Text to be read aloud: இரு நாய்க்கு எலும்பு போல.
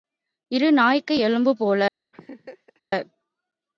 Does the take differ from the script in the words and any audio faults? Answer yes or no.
yes